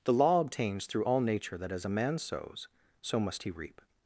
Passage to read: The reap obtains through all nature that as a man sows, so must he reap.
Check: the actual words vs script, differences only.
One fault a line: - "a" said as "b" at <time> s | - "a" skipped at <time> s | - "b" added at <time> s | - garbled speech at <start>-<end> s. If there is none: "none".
- "reap" said as "law" at 0.1 s